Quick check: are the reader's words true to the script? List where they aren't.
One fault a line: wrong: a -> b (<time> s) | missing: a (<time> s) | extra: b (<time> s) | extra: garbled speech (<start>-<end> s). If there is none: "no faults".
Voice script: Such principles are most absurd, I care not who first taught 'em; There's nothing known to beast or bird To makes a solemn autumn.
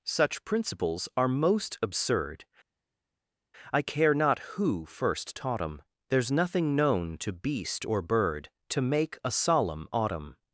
wrong: makes -> make (8.8 s)